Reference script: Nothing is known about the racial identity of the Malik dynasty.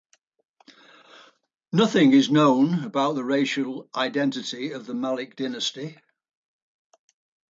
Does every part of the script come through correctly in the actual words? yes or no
yes